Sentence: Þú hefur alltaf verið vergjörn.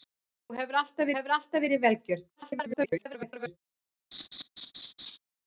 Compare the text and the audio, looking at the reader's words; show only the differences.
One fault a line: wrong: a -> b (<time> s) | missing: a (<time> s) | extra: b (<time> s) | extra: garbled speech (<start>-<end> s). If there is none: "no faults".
extra: hefur alltaf (1.2 s)
extra: garbled speech (2.4-3.6 s)